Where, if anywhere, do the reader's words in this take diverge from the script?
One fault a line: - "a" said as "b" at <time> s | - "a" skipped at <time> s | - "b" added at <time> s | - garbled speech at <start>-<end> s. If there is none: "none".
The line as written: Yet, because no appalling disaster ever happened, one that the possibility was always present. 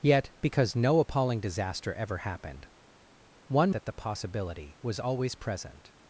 none